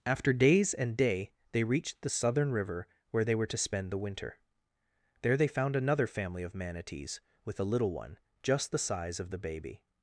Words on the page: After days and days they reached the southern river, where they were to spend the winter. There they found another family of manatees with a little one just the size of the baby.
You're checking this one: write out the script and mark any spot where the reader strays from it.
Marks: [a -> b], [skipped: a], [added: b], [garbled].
After days and [days -> day] they reached the southern river, where they were to spend the winter. There they found another family of manatees with a little one just the size of the baby.